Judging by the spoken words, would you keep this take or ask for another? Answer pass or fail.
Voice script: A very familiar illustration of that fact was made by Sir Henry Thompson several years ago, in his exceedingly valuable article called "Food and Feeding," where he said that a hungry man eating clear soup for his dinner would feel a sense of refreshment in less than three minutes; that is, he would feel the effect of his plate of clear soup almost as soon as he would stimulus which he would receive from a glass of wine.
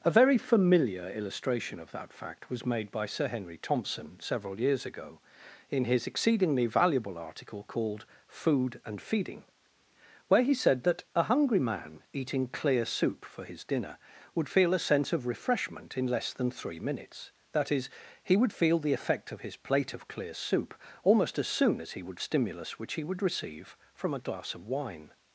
pass